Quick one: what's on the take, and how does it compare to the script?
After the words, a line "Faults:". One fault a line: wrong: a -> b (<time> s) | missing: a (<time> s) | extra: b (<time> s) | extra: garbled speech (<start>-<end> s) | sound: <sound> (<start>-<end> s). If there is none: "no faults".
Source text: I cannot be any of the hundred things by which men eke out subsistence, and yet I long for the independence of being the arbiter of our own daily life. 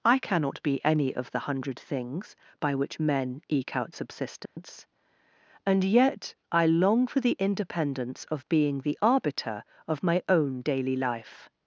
I cannot be any of the hundred things by which men eke out subsistence, and yet I long for the independence of being the arbiter of my own daily life.
Faults:
sound: dropout (4.5-4.6 s)
wrong: our -> my (10.0 s)